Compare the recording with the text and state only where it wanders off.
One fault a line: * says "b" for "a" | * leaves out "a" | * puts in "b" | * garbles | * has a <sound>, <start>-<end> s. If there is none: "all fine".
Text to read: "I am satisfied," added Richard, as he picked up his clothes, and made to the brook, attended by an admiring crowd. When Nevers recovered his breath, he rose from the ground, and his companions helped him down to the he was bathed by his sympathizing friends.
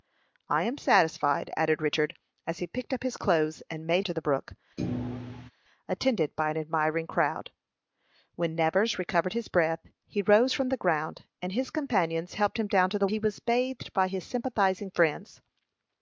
* has a thud, 4.8-5.5 s